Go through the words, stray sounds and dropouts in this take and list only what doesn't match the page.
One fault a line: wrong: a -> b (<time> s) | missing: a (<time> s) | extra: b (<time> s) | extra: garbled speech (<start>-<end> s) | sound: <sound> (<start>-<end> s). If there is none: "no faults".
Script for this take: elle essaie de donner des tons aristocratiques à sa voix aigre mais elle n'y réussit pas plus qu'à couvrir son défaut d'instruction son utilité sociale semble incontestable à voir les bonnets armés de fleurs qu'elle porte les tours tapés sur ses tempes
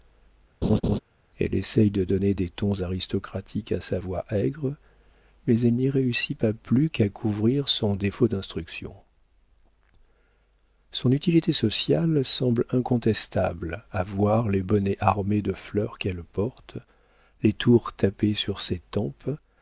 sound: laugh (0.6-1.0 s)